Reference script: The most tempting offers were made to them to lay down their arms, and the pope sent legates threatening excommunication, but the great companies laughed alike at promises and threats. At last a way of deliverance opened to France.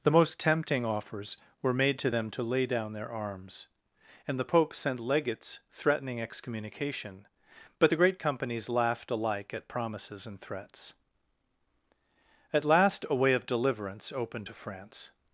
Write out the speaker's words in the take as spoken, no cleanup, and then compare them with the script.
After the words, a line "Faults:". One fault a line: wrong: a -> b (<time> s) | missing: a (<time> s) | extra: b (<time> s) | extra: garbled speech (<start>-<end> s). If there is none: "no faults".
The most tempting offers were made to them to lay down their arms, and the pope sent legates threatening excommunication, but the great companies laughed alike at promises and threats. At last a way of deliverance opened to France.
Faults:
no faults